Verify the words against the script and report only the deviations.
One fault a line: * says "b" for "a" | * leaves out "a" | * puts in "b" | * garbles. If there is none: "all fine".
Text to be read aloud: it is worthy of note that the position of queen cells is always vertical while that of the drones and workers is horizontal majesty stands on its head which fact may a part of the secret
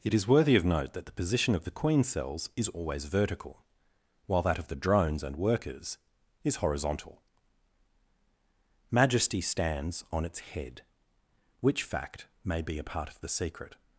* puts in "the"
* puts in "be"